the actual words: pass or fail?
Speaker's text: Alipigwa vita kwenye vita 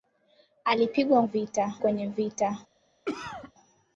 pass